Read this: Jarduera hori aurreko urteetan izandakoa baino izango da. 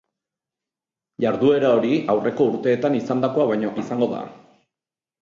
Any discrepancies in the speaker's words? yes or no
no